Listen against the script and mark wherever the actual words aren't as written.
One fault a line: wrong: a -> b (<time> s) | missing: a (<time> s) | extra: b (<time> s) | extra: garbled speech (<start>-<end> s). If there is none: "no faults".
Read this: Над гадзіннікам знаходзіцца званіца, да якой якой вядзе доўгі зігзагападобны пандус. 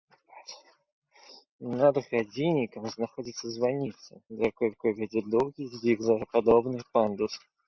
no faults